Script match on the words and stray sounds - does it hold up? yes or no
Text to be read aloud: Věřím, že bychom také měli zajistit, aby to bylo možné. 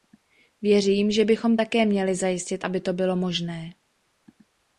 yes